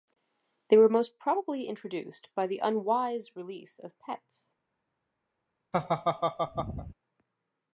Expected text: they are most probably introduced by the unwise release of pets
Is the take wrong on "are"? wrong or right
wrong